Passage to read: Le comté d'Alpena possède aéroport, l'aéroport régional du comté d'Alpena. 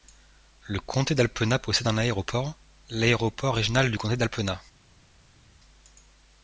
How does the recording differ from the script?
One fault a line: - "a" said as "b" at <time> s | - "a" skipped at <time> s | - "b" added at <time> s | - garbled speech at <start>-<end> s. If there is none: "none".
- "un" added at 1.9 s